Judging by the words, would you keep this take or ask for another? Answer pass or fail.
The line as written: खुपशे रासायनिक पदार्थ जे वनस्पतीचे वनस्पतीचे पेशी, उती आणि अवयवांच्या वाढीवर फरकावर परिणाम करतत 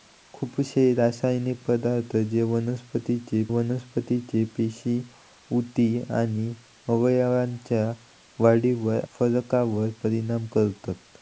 pass